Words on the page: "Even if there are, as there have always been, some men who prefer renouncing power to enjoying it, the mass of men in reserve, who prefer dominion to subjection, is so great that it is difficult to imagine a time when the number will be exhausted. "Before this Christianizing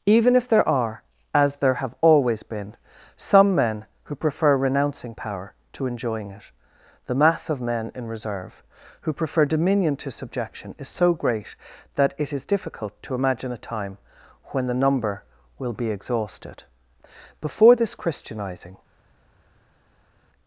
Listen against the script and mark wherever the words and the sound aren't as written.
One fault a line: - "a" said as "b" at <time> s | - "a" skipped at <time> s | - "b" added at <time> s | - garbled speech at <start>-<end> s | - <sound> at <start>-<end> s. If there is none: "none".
none